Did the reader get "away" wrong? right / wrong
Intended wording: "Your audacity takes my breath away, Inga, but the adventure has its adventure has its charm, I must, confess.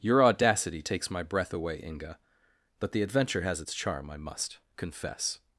right